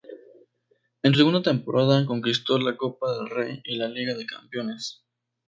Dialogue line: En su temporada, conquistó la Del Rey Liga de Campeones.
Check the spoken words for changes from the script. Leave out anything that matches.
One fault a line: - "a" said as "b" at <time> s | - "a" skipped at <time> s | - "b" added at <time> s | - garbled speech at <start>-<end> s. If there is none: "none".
- "segunda" added at 1.2 s
- "Copa" added at 2.8 s
- "y la" added at 3.6 s